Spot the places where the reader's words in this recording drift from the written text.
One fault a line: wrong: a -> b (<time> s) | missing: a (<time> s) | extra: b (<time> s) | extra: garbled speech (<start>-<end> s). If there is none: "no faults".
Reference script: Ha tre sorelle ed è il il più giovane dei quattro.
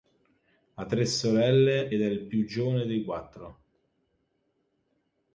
missing: il (2.3 s)